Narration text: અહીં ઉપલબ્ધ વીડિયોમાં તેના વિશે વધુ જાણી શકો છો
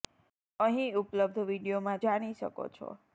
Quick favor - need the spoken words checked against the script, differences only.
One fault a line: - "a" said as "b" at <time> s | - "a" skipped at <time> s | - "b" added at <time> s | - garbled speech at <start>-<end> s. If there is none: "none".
- "તેના વિશે વધુ" skipped at 2.0 s